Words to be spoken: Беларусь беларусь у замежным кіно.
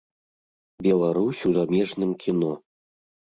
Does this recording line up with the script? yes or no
no